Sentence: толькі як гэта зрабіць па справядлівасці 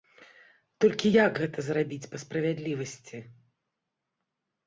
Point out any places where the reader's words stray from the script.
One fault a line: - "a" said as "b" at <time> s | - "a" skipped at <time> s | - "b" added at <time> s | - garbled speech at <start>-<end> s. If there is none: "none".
none